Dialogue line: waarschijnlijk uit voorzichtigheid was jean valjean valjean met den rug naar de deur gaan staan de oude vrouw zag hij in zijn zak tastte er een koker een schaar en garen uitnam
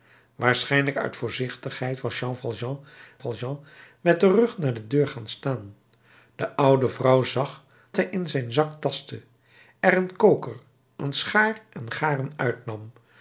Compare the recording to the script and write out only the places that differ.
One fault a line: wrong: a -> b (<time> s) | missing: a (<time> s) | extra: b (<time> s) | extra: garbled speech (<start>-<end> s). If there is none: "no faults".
no faults